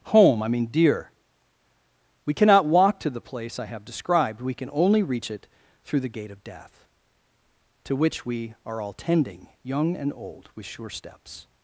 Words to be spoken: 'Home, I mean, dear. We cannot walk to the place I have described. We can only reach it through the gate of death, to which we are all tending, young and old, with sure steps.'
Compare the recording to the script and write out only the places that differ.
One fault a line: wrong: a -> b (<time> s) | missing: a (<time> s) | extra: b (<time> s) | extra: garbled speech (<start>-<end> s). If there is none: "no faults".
no faults